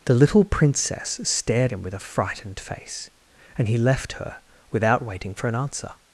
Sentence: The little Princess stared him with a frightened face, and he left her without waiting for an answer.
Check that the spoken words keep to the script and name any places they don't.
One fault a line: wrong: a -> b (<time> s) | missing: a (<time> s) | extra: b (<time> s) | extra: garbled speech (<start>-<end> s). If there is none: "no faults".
no faults